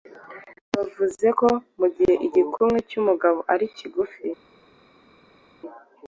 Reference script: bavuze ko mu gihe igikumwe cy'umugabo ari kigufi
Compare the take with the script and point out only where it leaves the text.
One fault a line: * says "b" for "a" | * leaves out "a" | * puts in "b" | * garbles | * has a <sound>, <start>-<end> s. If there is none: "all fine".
all fine